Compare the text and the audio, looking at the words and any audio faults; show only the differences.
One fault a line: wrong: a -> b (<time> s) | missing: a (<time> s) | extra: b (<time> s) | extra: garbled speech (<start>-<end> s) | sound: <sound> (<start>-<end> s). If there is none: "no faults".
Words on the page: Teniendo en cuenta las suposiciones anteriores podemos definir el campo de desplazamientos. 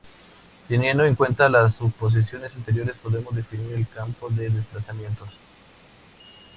no faults